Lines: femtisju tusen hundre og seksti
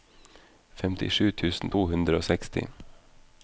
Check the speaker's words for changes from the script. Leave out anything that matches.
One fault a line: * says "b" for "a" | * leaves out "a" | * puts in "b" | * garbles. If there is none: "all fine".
* puts in "to"